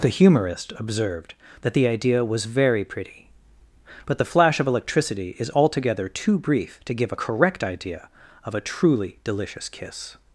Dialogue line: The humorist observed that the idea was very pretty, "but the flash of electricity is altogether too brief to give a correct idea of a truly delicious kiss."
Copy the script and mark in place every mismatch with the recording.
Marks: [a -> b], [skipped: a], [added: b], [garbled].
The humorist observed that the idea was very pretty, "but the flash of electricity is altogether too brief to give a correct idea of a truly delicious kiss."